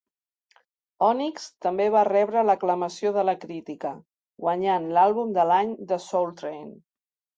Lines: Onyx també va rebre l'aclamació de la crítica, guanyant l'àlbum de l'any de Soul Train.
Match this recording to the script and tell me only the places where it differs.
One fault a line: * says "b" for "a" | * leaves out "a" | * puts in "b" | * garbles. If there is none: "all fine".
all fine